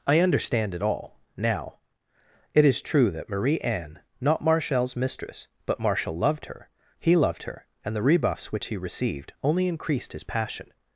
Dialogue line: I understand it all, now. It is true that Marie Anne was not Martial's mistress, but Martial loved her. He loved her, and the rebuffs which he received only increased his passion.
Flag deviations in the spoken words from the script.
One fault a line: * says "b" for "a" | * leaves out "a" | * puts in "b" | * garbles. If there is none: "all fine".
* leaves out "was"